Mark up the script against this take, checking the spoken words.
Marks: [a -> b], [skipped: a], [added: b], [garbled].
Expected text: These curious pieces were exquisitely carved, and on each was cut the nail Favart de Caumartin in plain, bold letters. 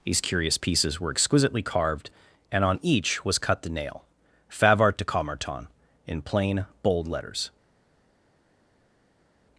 These curious pieces were exquisitely carved, and on each was cut the nail Favart de Caumartin in plain, bold letters.